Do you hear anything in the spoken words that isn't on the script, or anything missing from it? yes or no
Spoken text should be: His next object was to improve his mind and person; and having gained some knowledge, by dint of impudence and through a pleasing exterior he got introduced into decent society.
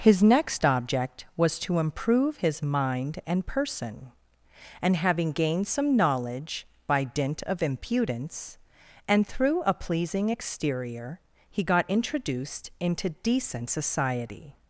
no